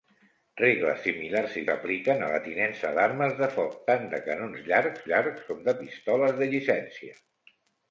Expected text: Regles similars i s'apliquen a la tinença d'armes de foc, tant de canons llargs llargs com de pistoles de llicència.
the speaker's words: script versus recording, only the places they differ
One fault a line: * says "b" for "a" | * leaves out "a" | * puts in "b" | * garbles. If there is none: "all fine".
all fine